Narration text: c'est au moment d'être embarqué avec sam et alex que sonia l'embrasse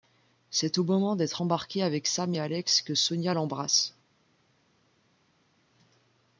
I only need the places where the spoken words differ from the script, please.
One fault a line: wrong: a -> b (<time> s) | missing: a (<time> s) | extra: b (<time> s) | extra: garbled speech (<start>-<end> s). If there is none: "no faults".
no faults